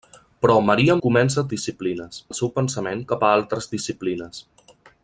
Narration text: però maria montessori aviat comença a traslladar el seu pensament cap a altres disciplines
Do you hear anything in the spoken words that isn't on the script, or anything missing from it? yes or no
yes